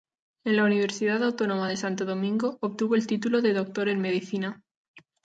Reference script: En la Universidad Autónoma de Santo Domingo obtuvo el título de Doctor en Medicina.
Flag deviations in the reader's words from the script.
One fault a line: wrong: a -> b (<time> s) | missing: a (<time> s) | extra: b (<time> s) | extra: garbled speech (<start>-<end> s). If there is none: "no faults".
no faults